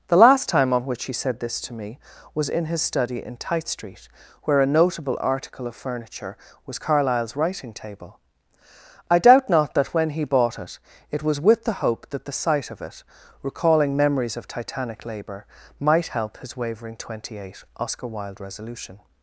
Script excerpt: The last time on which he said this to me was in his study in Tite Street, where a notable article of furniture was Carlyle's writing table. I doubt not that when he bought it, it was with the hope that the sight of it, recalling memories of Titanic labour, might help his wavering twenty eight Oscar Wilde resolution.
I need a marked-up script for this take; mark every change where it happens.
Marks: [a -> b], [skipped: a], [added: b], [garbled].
The last time on which he said this to me was in his study in Tite Street, where a notable article of furniture was Carlyle's writing table. I doubt not that when he bought it, it was with the hope that the sight of it, recalling memories of Titanic labour, might help his wavering twenty eight Oscar Wilde resolution.